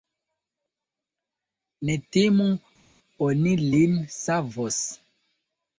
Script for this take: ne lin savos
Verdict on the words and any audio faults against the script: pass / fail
fail